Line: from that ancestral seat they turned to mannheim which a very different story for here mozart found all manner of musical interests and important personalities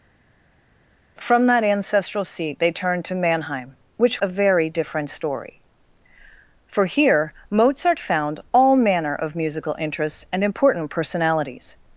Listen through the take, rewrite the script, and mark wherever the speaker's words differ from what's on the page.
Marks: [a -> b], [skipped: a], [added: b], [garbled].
from that ancestral seat they turned to mannheim which a very different story for here mozart found all manner of musical interests and important personalities